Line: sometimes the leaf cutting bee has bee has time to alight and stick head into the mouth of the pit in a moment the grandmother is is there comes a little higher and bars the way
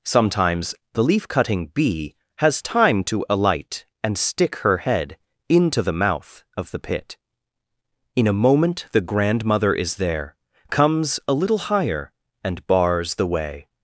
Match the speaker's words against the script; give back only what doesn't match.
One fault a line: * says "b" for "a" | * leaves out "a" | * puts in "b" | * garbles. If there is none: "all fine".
* leaves out "bee has"
* puts in "her"
* leaves out "is"